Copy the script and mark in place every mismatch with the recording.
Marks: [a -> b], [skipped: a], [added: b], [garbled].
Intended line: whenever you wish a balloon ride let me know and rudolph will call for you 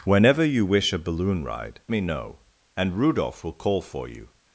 whenever you wish a balloon ride [skipped: let] me know and rudolph will call for you